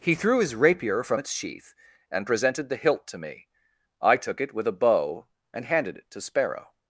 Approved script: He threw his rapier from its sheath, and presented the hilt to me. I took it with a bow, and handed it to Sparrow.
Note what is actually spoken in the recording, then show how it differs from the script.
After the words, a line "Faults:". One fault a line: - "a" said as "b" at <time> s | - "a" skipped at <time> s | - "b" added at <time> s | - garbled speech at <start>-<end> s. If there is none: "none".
He threw his rapier from its sheath, and presented the hilt to me. I took it with a bow, and handed it to Sparrow.
Faults:
none